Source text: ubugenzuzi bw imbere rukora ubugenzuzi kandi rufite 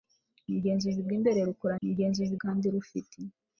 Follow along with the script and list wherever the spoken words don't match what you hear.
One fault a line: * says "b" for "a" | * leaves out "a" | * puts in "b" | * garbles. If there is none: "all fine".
all fine